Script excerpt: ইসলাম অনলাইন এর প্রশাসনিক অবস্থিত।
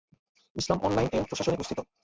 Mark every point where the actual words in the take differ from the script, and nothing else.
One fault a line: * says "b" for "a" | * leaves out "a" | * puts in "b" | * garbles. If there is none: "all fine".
all fine